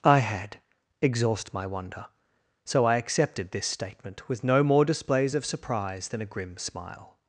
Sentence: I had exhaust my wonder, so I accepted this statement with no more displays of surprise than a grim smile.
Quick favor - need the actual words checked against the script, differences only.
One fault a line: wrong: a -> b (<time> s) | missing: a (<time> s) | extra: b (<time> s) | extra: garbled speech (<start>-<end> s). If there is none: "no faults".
no faults